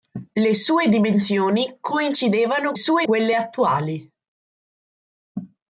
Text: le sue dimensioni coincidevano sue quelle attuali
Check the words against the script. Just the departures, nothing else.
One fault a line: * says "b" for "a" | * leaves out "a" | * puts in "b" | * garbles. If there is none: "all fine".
all fine